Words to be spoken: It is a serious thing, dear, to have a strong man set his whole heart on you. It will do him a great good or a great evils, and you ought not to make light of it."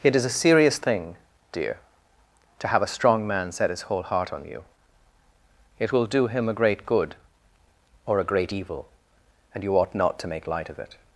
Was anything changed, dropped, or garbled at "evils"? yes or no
yes